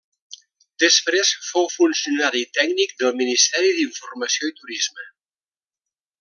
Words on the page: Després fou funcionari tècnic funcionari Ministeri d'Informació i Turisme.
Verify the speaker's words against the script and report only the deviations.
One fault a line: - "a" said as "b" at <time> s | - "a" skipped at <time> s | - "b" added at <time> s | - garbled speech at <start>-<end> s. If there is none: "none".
- "funcionari" said as "del" at 3.0 s